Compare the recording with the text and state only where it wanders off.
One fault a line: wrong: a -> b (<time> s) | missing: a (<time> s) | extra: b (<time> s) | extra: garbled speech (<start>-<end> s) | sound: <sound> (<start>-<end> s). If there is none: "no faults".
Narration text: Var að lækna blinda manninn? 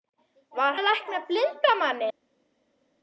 no faults